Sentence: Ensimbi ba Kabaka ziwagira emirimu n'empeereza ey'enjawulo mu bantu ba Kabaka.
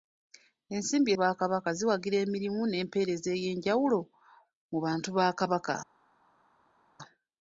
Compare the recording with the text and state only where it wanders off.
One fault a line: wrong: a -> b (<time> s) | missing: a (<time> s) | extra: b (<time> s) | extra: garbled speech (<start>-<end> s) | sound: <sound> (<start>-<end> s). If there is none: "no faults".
no faults